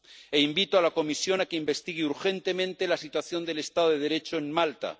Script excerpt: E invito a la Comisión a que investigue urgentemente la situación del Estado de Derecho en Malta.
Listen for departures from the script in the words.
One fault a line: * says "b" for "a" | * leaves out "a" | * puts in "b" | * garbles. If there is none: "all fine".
all fine